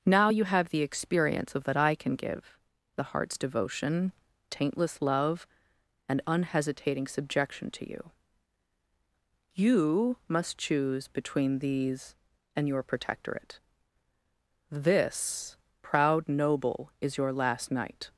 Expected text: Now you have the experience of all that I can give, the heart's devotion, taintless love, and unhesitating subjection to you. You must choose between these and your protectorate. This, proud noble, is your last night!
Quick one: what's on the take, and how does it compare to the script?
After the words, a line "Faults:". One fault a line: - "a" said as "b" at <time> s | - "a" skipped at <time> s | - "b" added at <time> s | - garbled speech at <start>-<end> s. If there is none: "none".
Now you have the experience of that I can give, the heart's devotion, taintless love, and unhesitating subjection to you. You must choose between these and your protectorate. This, proud noble, is your last night!
Faults:
- "all" skipped at 1.7 s